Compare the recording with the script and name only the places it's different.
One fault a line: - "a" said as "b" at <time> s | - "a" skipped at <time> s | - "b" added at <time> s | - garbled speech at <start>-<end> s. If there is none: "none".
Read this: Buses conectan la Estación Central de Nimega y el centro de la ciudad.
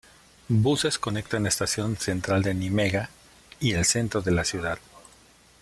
none